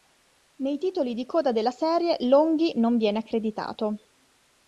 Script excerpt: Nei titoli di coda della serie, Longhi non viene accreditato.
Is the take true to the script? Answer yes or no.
yes